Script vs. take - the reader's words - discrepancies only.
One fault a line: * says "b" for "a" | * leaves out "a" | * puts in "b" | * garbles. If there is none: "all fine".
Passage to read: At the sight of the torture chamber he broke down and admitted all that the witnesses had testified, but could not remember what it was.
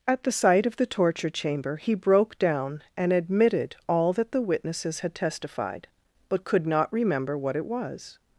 all fine